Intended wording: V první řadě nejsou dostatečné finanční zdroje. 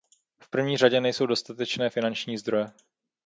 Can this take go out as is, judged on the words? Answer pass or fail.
pass